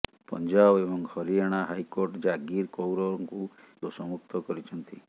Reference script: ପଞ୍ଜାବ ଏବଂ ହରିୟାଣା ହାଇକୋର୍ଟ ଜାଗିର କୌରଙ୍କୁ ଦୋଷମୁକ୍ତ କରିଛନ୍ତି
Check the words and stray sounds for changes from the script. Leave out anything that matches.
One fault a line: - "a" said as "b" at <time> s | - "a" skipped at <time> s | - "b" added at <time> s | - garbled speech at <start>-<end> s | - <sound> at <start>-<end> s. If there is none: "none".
none